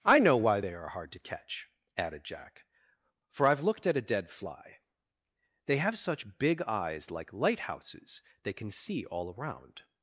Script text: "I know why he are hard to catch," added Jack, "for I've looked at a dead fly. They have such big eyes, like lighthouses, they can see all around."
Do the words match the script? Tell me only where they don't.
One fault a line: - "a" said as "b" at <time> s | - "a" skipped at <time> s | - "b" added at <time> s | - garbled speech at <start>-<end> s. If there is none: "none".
- "he" said as "they" at 0.6 s